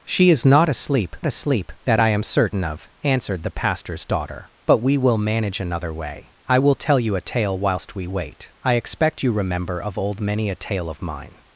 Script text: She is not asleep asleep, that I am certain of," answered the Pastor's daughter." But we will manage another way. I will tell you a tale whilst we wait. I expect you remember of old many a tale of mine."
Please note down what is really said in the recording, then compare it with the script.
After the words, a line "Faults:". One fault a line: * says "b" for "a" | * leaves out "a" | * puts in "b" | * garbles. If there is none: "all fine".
She is not asleep asleep, that I am certain of," answered the Pastor's daughter." But we will manage another way. I will tell you a tale whilst we wait. I expect you remember of old many a tale of mine."
Faults:
all fine